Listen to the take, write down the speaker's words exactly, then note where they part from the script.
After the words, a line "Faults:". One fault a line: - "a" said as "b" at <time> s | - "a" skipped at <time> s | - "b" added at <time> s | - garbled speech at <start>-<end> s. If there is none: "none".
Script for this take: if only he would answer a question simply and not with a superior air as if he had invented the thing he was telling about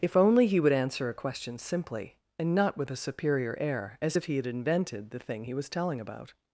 if only he would answer a question simply and not with a superior air as if he had invented the thing he was telling about
Faults:
none